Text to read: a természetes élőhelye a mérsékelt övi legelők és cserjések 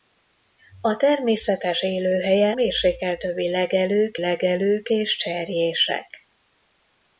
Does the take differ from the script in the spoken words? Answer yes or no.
yes